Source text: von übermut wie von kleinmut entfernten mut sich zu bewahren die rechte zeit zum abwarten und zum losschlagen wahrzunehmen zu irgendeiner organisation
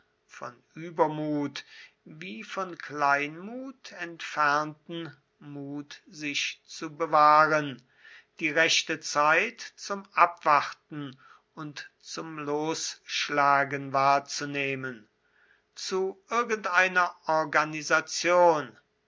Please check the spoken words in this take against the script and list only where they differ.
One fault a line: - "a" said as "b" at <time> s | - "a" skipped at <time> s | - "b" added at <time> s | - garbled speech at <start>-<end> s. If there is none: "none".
none